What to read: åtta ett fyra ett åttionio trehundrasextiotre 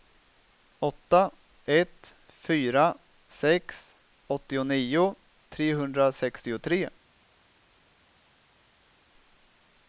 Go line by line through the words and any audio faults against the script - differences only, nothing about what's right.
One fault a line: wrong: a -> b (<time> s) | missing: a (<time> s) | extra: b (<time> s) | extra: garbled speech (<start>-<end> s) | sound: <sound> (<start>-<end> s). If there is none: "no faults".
wrong: ett -> sex (3.3 s)